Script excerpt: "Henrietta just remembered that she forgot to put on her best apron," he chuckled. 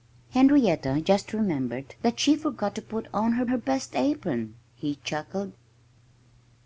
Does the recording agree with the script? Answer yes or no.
no